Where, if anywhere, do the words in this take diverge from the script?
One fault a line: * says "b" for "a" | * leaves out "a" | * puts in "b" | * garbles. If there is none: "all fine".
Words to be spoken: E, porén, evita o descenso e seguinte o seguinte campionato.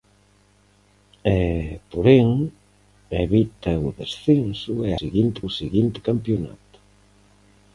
all fine